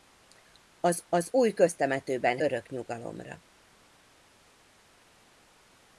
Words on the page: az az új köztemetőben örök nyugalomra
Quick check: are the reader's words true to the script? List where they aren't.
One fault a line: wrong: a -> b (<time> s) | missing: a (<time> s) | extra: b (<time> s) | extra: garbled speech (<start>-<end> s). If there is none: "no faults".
no faults